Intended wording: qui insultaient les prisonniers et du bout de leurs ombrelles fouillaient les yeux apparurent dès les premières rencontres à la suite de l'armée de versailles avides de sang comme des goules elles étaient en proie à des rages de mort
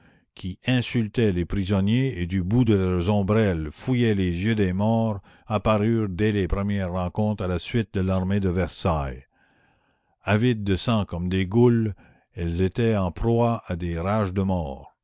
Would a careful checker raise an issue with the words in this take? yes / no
yes